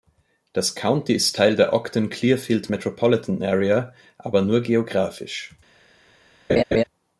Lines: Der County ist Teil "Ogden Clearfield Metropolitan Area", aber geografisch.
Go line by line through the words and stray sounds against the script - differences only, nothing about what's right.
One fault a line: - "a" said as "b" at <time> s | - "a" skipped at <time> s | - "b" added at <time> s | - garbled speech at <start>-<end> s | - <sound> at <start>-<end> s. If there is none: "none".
- "Der" said as "Das" at 0.5 s
- "der" added at 1.6 s
- "nur" added at 4.4 s
- laugh at 6.5-6.8 s